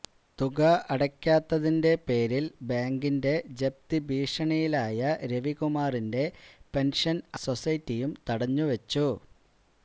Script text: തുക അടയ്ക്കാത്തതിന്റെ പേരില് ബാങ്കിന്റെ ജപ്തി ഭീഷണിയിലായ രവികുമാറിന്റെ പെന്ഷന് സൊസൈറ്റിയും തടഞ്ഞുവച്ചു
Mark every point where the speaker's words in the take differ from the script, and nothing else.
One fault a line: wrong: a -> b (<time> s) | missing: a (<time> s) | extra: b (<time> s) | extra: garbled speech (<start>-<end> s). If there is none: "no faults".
no faults